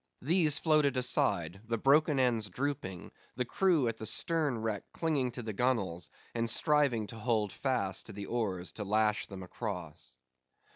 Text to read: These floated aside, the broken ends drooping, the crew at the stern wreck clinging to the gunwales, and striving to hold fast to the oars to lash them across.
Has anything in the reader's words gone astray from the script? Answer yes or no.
no